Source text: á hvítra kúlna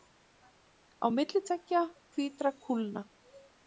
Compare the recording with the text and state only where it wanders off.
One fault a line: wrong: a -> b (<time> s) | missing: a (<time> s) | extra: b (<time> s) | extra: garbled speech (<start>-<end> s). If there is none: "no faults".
extra: milli tveggja (1.2 s)